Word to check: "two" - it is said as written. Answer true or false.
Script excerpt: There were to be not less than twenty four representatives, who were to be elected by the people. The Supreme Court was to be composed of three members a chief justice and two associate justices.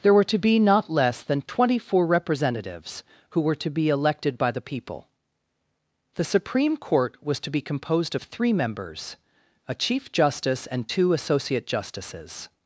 true